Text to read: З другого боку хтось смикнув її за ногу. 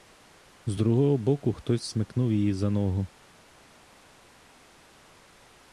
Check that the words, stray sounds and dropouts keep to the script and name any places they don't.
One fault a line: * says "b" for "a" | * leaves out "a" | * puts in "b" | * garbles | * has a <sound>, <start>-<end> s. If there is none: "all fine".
all fine